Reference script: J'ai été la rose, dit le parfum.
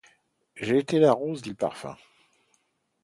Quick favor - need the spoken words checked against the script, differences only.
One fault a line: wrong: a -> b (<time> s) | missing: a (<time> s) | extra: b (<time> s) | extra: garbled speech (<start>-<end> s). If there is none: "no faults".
no faults